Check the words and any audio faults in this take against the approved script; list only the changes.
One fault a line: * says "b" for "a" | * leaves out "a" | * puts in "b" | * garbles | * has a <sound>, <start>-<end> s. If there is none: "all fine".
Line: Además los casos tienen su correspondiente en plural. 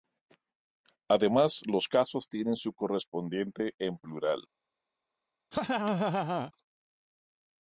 * has a laugh, 5.5-6.5 s